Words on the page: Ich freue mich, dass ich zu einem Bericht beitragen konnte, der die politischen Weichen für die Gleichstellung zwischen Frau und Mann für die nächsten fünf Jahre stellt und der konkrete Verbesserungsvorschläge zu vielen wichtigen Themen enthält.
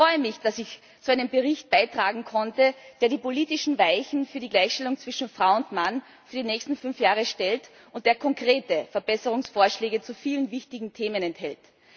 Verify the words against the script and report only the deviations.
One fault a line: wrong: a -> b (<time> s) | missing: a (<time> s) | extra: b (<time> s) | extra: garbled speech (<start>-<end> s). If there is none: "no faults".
no faults